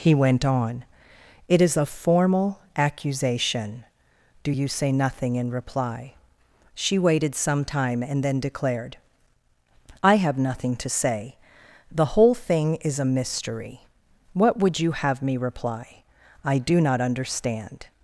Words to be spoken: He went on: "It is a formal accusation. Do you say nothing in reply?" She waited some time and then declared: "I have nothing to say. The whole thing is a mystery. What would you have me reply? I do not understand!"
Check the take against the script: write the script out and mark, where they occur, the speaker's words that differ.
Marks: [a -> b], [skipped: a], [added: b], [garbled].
He went on: "It is a formal accusation. Do you say nothing in reply?" She waited some time and then declared: "I have nothing to say. The whole thing is a mystery. What would you have me reply? I do not understand!"